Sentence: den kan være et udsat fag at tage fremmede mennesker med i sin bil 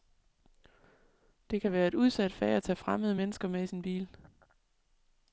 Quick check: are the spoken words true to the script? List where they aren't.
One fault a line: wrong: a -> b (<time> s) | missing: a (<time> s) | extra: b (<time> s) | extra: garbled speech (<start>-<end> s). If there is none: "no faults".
wrong: den -> det (1.5 s)